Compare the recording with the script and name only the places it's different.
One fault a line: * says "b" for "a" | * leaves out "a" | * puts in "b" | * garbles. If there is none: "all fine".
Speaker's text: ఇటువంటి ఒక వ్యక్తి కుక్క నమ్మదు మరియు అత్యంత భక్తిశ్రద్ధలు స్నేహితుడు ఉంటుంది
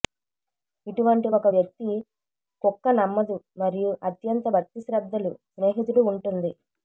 all fine